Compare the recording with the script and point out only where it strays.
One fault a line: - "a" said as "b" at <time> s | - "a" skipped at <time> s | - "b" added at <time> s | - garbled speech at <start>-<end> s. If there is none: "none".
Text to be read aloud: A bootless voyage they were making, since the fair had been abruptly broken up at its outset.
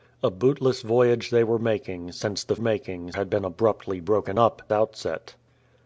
- "fair" said as "making" at 2.6 s
- "at its" skipped at 4.6 s